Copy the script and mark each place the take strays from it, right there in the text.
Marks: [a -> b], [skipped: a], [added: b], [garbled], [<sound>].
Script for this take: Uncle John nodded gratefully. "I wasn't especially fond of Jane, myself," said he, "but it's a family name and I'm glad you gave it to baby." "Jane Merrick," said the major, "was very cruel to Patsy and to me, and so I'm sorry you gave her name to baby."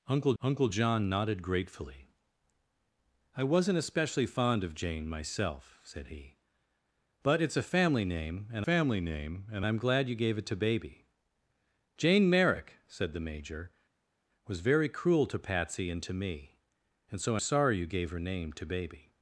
Uncle [added: uncle] John nodded gratefully. "I wasn't especially fond of Jane, myself," said he, "but it's a family name and [added: family name and] I'm glad you gave it to baby." "Jane Merrick," said the major, "was very cruel to Patsy and to me, and so [skipped: I'm] sorry you gave her name to baby."